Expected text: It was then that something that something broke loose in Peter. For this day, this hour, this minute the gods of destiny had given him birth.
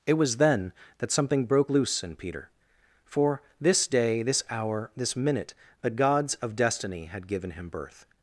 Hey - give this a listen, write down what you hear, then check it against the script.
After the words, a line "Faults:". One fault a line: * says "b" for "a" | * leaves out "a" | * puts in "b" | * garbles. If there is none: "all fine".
It was then that something broke loose in Peter. For this day, this hour, this minute the gods of destiny had given him birth.
Faults:
* leaves out "that something"